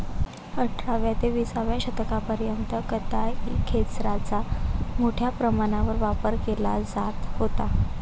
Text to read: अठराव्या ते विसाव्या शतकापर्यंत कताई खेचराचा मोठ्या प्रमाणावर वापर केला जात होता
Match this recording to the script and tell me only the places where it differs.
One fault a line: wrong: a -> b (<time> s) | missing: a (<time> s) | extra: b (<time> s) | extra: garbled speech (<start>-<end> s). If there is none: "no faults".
no faults